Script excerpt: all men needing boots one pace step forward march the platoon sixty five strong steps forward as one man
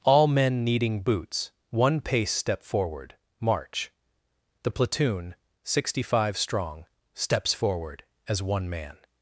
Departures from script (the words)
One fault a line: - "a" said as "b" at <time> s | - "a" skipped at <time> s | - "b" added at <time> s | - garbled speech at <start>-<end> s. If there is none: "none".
none